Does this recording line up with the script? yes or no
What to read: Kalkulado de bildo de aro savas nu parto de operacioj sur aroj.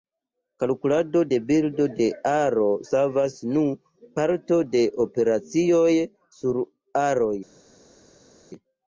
yes